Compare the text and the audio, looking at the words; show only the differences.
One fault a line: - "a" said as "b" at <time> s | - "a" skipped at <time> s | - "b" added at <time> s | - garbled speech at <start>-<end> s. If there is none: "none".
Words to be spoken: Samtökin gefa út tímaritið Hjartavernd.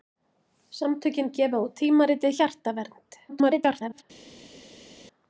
- garbled speech at 3.3-4.0 s